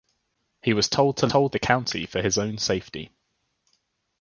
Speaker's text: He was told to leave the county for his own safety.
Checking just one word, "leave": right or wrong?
wrong